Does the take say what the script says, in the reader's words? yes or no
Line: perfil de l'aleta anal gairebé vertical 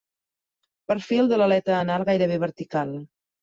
yes